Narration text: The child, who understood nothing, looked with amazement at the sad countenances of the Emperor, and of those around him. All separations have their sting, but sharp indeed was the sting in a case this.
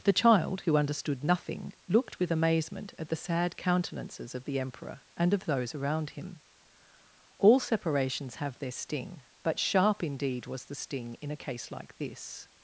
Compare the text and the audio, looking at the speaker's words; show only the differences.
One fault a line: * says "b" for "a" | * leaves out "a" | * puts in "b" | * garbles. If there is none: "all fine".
* puts in "like"